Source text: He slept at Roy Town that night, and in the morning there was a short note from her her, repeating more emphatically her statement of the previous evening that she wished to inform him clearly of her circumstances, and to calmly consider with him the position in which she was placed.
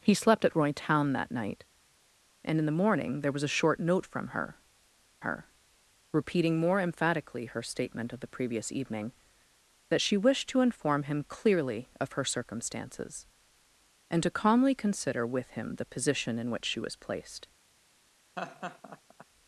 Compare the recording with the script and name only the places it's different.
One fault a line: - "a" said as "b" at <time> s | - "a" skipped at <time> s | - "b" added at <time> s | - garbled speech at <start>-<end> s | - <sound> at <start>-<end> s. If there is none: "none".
- laugh at 18.4-19.3 s